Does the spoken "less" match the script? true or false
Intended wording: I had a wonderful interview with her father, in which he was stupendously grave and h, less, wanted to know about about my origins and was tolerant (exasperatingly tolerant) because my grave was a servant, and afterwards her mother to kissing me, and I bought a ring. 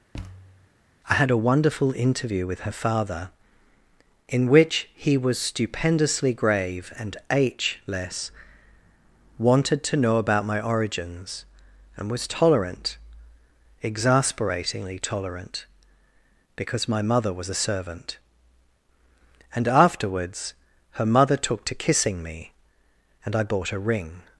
true